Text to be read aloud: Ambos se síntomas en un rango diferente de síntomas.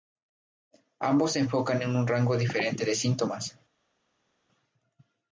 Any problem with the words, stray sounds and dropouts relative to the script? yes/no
yes